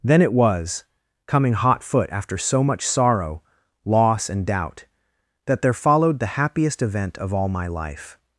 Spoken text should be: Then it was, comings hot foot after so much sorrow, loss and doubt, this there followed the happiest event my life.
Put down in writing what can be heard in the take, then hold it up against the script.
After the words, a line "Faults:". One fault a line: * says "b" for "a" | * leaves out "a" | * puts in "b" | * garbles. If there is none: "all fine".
Then it was, coming hot foot after so much sorrow, loss and doubt, that there followed the happiest event of all my life.
Faults:
* says "coming" for "comings"
* says "that" for "this"
* puts in "of all"